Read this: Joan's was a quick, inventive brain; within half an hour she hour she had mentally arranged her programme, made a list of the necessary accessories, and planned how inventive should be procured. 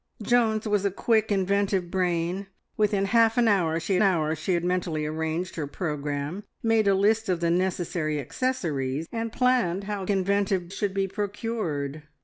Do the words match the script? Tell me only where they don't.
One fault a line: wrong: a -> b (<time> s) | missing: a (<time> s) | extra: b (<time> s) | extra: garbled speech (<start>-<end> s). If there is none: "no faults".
no faults